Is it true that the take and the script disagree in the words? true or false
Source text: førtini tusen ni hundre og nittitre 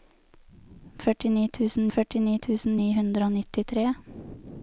true